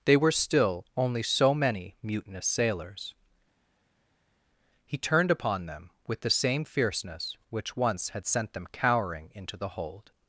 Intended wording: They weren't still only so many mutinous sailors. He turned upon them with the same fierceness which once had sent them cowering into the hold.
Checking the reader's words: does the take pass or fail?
fail